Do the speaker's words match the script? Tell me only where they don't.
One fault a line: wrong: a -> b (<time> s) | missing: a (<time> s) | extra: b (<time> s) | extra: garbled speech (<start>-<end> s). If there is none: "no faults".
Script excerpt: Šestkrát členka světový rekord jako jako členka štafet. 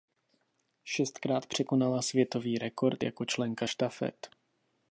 wrong: členka -> překonala (1.4 s)
missing: jako (3.2 s)